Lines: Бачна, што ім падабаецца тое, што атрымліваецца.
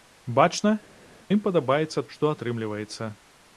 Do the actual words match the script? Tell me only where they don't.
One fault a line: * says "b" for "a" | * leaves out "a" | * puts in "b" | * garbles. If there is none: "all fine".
* leaves out "што"
* leaves out "тое"